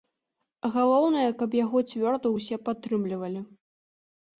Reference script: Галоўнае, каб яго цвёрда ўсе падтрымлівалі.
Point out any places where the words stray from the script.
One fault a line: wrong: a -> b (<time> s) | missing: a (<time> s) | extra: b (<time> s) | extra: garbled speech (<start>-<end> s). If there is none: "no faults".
no faults